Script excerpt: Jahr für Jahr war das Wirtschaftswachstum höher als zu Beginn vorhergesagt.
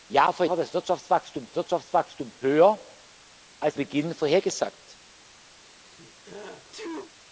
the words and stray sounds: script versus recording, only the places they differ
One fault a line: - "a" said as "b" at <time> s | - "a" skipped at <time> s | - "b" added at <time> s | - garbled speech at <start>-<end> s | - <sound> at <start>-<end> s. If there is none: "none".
- "Jahr" skipped at 0.5 s
- "Wirtschaftswachstum" added at 1.6 s
- "zu" skipped at 3.8 s
- sneeze at 5.6-7.1 s